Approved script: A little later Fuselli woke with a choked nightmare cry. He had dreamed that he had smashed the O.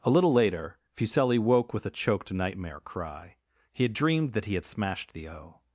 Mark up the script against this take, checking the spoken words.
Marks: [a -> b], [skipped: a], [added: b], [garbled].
A little later Fuselli woke with a choked nightmare cry. He had dreamed that he had smashed the O.